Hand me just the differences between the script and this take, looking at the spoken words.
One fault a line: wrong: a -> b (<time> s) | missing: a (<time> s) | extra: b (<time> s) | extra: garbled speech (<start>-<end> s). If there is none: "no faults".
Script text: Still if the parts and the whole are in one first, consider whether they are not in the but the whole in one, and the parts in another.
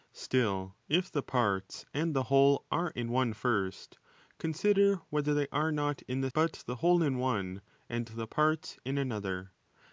no faults